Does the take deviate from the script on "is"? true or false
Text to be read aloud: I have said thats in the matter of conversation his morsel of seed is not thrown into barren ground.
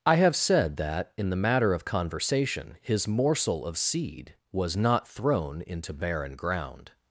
true